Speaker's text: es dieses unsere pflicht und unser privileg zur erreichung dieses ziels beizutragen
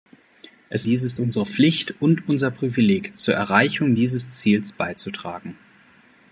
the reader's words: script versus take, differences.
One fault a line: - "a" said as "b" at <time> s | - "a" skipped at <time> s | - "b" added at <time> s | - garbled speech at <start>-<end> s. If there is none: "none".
none